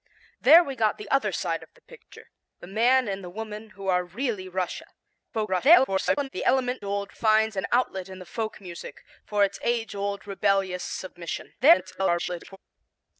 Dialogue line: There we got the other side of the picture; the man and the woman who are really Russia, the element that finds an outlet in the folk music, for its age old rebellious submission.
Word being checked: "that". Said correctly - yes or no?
no